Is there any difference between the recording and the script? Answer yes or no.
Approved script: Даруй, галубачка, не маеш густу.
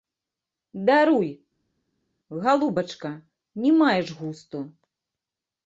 no